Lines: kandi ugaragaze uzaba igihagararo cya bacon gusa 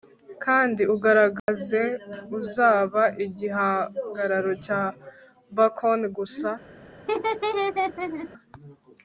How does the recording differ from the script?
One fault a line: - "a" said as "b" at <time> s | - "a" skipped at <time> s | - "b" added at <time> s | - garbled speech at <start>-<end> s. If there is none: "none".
none